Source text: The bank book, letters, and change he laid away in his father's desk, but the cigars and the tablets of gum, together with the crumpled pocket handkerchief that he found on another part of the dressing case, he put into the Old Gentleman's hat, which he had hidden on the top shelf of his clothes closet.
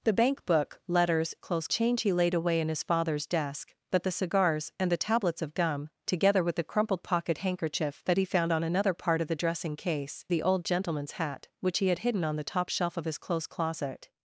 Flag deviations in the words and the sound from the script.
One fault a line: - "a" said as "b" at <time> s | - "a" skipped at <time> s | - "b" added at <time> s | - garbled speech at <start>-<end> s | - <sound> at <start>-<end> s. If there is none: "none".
- "and" said as "clothes" at 1.4 s
- "he put into" skipped at 10.2 s